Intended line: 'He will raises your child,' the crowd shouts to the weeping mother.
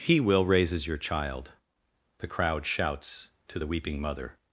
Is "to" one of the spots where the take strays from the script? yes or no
no